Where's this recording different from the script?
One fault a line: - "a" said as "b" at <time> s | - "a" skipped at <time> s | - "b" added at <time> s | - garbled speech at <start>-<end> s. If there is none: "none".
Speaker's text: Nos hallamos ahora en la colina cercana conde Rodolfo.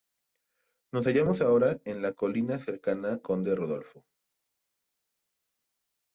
none